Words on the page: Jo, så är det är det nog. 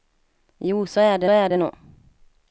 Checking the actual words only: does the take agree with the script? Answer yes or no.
yes